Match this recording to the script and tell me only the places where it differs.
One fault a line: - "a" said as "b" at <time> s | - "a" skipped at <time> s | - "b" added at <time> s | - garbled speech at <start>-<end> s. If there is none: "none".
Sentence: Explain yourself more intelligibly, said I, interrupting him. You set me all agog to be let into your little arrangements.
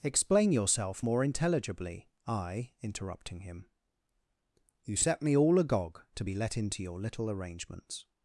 - "said" skipped at 2.1 s